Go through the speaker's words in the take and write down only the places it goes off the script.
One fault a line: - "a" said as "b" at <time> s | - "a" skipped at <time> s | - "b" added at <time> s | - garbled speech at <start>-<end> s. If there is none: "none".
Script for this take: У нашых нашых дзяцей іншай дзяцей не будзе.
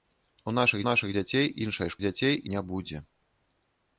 none